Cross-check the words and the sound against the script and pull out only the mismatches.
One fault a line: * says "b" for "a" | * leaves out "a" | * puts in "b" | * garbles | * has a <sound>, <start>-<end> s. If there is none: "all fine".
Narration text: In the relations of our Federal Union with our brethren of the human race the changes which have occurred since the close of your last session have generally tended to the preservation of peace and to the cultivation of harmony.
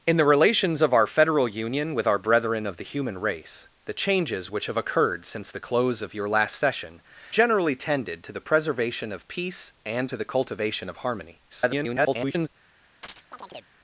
* leaves out "have"
* garbles
* has a chirp, 13.0-13.7 s